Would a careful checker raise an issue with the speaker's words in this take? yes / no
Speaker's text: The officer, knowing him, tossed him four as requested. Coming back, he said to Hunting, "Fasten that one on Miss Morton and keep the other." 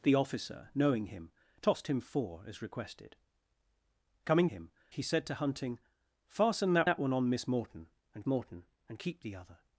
yes